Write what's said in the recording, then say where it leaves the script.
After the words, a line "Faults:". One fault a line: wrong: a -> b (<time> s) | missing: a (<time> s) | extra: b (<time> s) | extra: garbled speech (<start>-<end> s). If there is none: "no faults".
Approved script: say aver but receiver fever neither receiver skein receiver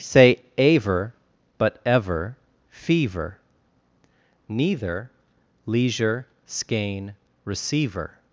say aver but ever fever neither leisure skein receiver
Faults:
wrong: receiver -> ever (1.8 s)
wrong: receiver -> leisure (5.7 s)